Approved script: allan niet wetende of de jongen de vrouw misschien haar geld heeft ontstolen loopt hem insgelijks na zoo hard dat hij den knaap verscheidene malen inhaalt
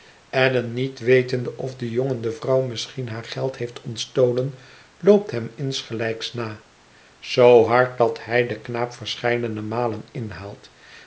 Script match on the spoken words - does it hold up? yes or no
yes